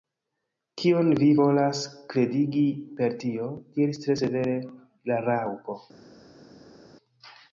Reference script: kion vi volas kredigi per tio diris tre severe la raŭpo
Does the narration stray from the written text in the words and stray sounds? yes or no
no